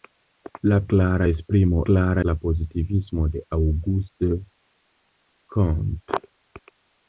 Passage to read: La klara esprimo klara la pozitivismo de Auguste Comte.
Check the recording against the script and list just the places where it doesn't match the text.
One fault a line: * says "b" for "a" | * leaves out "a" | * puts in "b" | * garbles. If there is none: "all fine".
all fine